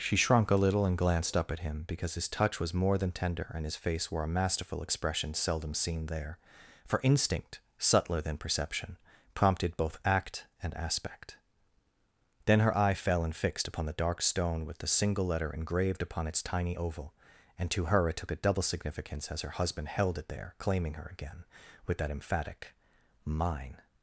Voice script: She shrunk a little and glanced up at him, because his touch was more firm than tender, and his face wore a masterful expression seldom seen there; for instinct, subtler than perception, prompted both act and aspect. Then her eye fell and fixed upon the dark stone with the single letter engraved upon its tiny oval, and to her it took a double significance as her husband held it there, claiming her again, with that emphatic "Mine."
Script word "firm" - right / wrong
wrong